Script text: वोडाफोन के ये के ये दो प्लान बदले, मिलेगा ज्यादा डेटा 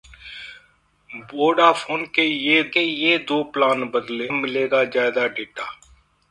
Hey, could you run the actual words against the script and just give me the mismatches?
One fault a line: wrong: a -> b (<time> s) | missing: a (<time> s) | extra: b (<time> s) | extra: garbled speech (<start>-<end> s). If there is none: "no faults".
no faults